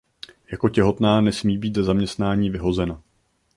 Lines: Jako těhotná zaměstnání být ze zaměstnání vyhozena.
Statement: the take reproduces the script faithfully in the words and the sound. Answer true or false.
false